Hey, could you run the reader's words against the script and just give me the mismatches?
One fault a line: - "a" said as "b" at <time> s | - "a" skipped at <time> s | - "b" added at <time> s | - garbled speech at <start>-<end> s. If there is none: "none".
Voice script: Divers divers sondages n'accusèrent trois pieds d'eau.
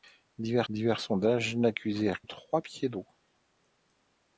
none